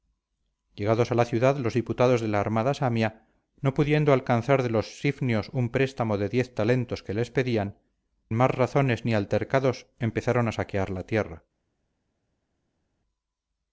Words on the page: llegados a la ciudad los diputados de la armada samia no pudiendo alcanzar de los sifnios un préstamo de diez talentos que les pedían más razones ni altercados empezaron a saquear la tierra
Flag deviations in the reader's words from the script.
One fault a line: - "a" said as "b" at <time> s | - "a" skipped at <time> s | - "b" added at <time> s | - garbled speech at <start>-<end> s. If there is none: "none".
none